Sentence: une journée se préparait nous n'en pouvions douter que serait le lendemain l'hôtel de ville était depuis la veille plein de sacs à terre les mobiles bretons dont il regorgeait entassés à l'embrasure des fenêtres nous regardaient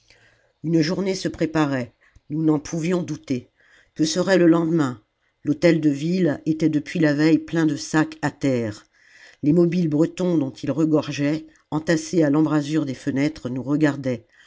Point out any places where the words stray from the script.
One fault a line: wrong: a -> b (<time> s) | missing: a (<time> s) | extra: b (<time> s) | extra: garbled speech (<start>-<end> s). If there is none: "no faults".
no faults